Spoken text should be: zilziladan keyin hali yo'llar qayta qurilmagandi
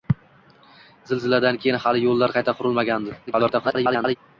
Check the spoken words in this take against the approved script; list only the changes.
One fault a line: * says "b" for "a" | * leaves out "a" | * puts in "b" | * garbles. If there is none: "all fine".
* garbles